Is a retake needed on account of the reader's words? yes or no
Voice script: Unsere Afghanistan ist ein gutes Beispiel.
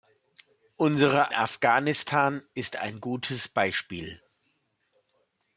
no